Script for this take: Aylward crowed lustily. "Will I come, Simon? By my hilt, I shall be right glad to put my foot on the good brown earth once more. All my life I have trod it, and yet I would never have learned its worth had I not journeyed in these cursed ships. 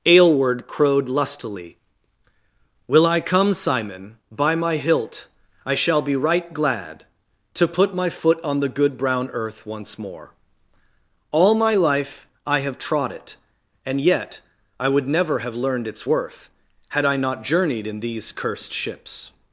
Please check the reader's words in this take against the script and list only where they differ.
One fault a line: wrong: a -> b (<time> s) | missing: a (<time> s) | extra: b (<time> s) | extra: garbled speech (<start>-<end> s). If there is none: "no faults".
no faults